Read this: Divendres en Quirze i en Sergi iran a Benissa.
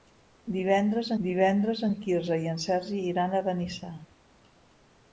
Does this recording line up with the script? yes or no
no